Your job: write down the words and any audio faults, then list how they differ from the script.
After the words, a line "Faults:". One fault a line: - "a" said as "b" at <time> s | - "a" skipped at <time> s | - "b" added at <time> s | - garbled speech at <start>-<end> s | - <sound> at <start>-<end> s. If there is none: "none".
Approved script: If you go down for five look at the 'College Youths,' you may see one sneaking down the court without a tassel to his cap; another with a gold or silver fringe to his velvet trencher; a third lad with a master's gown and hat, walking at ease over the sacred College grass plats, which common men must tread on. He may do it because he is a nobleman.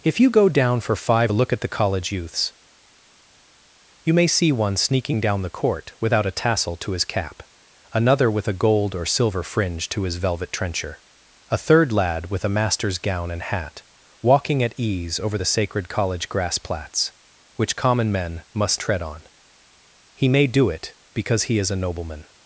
If you go down for five look at the 'College Youths,' you may see one sneaking down the court without a tassel to his cap; another with a gold or silver fringe to his velvet trencher; a third lad with a master's gown and hat, walking at ease over the sacred College grass plats, which common men must tread on. He may do it because he is a nobleman.
Faults:
none